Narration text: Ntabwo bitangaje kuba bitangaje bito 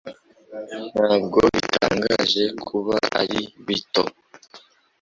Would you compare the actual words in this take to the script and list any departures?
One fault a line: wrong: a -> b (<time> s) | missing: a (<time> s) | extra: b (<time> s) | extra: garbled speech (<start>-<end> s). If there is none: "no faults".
wrong: bitangaje -> ari (3.2 s)